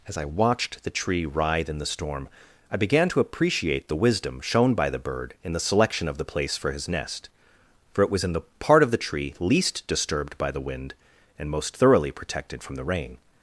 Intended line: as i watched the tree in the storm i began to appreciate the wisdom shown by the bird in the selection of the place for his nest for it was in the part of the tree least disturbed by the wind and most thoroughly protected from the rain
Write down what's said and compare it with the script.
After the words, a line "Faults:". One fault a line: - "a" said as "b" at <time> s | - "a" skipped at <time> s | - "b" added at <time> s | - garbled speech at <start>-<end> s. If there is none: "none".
as i watched the tree writhe in the storm i began to appreciate the wisdom shown by the bird in the selection of the place for his nest for it was in the part of the tree least disturbed by the wind and most thoroughly protected from the rain
Faults:
- "writhe" added at 1.3 s